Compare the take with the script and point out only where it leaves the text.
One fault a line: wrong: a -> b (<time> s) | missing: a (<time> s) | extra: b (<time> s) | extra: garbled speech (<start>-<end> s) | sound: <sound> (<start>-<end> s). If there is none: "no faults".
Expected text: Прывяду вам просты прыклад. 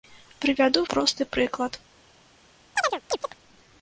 missing: вам (0.8 s)
sound: chirp (2.8-3.4 s)